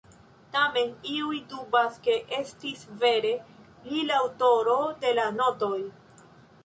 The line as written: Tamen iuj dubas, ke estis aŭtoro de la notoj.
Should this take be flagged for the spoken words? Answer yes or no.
yes